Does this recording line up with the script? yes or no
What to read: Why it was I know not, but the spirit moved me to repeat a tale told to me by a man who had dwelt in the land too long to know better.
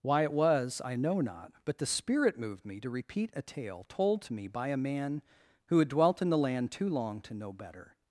yes